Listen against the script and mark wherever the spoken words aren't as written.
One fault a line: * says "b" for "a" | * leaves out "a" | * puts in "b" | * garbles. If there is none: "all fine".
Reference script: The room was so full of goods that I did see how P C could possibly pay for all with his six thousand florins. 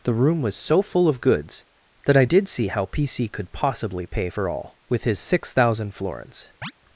all fine